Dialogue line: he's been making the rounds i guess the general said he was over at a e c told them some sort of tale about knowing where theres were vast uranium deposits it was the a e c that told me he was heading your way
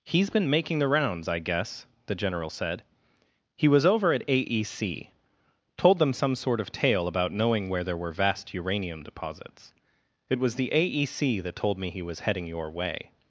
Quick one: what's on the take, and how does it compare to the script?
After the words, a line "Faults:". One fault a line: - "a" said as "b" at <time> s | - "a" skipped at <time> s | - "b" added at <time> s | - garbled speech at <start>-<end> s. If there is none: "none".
he's been making the rounds i guess the general said he was over at a e c told them some sort of tale about knowing where there were vast uranium deposits it was the a e c that told me he was heading your way
Faults:
- "theres" said as "there" at 7.8 s